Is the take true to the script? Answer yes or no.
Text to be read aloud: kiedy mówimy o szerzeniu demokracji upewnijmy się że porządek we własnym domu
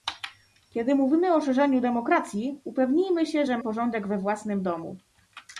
yes